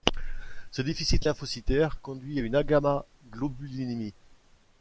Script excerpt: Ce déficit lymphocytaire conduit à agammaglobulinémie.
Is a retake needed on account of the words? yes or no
yes